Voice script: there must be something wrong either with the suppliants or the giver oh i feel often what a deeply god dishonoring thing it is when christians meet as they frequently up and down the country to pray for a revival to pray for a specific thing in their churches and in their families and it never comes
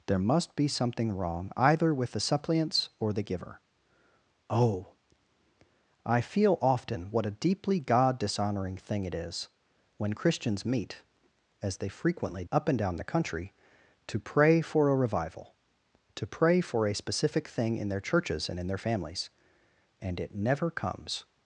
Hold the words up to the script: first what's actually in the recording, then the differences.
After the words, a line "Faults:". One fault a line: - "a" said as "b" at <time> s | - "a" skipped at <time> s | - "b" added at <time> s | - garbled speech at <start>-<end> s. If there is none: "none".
there must be something wrong either with the suppliants or the giver oh i feel often what a deeply god dishonoring thing it is when christians meet as they frequently up and down the country to pray for a revival to pray for a specific thing in their churches and in their families and it never comes
Faults:
none